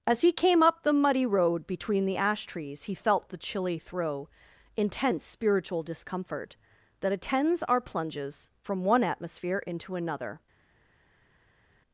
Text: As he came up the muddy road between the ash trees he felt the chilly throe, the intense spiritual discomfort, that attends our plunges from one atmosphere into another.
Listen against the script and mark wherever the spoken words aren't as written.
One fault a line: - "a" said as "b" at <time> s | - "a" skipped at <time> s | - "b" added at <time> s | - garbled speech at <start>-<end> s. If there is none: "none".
- "the" skipped at 4.3 s